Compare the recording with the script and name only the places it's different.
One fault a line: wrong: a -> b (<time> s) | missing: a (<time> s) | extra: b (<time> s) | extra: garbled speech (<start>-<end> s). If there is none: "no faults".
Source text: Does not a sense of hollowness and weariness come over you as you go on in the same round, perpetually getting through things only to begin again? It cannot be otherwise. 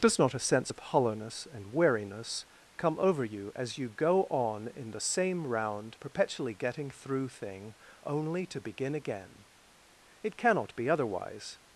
wrong: things -> thing (7.3 s)